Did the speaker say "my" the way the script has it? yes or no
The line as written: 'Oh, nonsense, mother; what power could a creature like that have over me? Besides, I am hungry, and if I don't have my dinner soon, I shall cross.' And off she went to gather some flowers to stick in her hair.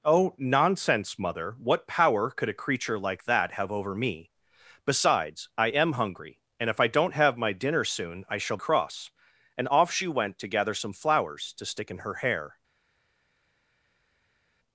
yes